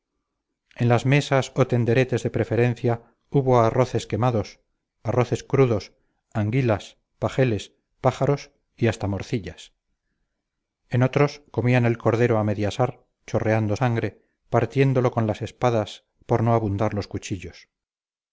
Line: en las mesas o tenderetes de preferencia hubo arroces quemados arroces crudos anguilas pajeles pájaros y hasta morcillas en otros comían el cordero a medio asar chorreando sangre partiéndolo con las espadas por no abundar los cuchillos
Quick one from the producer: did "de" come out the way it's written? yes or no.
yes